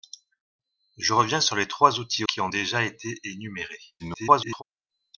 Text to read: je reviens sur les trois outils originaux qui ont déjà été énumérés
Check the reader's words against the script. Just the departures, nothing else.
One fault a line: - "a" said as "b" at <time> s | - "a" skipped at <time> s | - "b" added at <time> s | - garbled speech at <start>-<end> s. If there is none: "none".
- "originaux" skipped at 2.2 s
- garbled speech at 4.0-4.6 s